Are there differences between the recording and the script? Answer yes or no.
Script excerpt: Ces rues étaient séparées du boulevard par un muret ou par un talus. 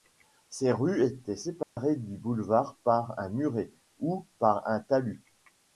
no